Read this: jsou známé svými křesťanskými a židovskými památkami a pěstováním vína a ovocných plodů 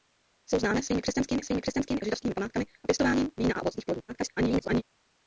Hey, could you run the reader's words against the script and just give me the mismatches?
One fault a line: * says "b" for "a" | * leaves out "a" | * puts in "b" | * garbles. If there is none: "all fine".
* puts in "svými křesťanskými"
* garbles